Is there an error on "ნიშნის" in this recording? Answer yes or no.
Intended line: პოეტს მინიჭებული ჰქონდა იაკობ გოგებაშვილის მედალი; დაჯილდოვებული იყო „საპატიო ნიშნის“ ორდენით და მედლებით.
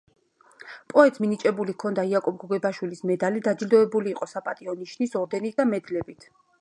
no